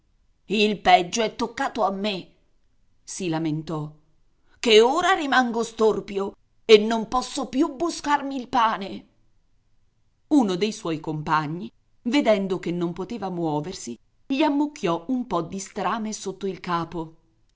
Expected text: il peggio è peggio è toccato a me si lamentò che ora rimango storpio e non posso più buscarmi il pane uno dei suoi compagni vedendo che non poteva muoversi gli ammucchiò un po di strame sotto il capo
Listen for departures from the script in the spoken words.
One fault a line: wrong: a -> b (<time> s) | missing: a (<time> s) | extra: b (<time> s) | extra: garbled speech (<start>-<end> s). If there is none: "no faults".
missing: peggio è (1.4 s)